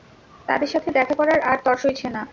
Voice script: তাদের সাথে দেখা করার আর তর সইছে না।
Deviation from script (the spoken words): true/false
false